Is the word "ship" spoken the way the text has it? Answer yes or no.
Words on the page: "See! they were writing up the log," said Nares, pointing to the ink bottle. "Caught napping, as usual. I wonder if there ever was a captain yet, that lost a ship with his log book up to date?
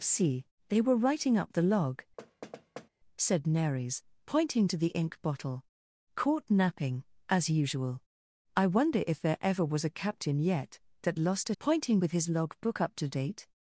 no